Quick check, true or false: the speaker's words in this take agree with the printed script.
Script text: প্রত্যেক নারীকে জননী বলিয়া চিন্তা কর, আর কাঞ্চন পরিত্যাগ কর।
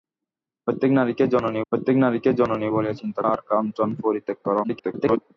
false